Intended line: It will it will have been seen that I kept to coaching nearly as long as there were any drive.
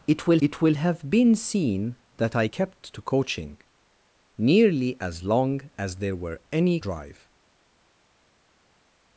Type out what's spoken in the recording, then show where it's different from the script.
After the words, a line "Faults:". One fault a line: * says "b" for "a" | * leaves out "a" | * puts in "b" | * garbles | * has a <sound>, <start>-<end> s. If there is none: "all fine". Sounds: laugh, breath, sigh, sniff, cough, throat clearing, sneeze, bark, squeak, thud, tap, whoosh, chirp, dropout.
It will it will have been seen that I kept to coaching nearly as long as there were any drive.
Faults:
all fine